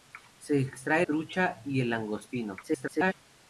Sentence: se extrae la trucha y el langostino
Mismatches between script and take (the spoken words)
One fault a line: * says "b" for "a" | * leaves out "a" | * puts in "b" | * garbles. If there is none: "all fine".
* leaves out "la"
* garbles